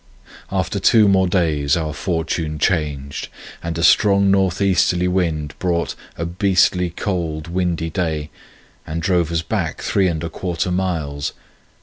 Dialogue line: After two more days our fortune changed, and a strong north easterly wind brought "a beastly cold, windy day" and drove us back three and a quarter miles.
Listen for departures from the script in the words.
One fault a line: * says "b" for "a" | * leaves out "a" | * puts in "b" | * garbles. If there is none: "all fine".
all fine